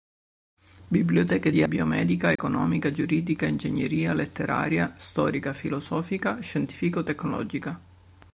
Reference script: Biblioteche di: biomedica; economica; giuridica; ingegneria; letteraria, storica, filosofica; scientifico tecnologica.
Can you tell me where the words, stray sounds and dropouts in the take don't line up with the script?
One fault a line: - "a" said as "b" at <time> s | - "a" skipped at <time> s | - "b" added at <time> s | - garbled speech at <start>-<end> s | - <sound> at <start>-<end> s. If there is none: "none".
- dropout at 2.4-2.4 s